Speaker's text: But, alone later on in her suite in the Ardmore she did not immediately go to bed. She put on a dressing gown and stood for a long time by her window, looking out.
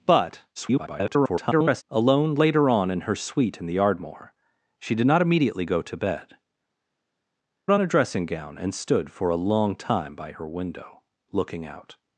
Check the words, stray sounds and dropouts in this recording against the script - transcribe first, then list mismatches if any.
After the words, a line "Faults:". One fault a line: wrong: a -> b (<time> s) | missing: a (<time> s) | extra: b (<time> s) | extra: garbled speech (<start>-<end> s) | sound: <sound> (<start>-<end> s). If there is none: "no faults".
But, [garbled] alone later on in her suite in the Ardmore she did not immediately go to bed. On a dressing gown and stood for a long time by her window, looking out.
Faults:
extra: garbled speech (0.6-1.8 s)
missing: She put (6.4 s)